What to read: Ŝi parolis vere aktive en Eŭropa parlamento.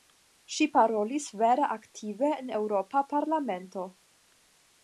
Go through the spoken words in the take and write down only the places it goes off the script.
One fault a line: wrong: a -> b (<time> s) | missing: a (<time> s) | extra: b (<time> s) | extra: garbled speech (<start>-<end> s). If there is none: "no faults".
no faults